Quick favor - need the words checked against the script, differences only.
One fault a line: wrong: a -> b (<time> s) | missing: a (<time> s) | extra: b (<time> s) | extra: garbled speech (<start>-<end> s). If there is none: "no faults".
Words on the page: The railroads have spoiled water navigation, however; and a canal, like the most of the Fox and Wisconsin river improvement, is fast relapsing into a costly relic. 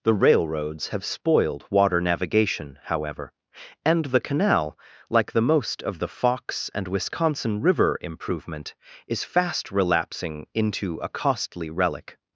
wrong: a -> the (4.0 s)